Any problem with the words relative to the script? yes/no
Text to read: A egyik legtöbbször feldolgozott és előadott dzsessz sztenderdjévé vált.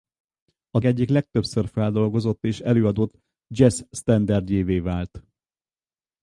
no